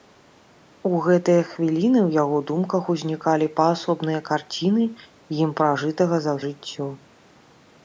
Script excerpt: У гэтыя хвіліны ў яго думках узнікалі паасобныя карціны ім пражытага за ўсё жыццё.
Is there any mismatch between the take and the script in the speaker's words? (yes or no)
yes